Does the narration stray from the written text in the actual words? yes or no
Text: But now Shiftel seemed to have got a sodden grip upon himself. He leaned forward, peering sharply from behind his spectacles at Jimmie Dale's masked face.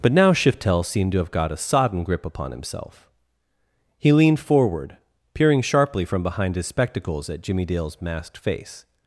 no